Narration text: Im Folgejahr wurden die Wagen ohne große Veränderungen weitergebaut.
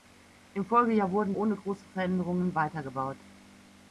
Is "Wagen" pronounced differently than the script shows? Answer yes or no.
yes